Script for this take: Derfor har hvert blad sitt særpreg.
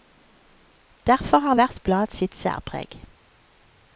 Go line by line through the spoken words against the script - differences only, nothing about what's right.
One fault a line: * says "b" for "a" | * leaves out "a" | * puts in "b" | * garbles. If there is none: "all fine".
all fine